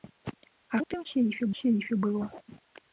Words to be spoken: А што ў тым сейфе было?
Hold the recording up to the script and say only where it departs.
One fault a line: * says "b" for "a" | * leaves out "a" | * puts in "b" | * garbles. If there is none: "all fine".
* leaves out "што"
* puts in "сейфе"